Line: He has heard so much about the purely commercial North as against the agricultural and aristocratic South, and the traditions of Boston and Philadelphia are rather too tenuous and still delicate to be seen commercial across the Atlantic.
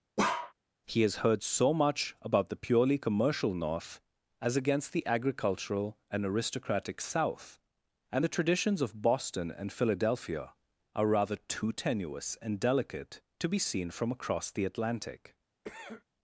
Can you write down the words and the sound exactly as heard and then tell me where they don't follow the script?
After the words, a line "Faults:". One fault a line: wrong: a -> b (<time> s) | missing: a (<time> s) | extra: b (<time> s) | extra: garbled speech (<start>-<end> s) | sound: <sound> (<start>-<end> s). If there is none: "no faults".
He has heard so much about the purely commercial North as against the agricultural and aristocratic South, and the traditions of Boston and Philadelphia are rather too tenuous and delicate to be seen from across the Atlantic.
Faults:
sound: bark (0.2-0.5 s)
missing: still (12.6 s)
wrong: commercial -> from (13.9 s)
sound: cough (15.6-16.0 s)